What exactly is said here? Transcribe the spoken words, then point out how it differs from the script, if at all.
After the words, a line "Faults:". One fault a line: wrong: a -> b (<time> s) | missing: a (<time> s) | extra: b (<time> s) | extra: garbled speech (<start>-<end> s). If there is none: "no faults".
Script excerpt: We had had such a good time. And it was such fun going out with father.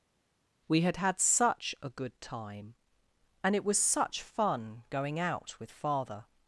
We had had such a good time. And it was such fun going out with father.
Faults:
no faults